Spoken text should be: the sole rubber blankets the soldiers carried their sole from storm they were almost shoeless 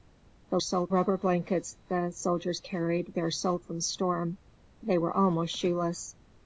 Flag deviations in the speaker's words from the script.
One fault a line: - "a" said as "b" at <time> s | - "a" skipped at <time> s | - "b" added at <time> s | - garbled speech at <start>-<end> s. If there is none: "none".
none